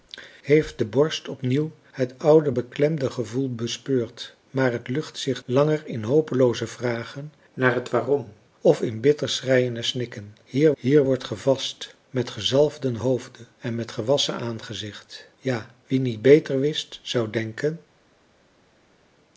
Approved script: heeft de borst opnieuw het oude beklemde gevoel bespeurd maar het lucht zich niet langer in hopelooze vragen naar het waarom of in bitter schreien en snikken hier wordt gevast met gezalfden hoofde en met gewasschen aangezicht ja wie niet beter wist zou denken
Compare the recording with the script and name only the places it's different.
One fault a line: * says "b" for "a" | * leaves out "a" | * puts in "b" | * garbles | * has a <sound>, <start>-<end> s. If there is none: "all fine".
* leaves out "niet"
* puts in "hier"